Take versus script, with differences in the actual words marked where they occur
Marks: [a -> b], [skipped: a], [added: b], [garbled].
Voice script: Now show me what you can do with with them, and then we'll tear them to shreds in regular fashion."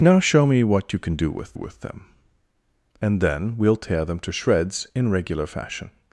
Now show me what you can do with with them, and then we'll tear them to shreds in regular fashion."